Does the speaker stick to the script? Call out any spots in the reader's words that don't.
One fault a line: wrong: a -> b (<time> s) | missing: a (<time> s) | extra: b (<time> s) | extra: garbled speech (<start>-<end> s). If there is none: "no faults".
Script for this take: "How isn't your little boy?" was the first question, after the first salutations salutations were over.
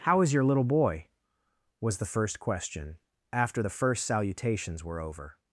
wrong: isn't -> is (0.2 s)
missing: salutations (4.8 s)